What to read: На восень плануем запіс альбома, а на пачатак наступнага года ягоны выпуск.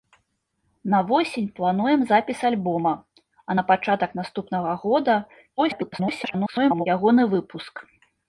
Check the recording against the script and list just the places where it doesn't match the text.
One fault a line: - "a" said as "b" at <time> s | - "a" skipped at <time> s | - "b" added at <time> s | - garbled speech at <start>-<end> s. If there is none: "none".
- garbled speech at 5.6-6.9 s